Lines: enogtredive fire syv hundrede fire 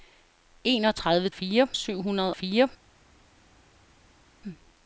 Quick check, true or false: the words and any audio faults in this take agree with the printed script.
true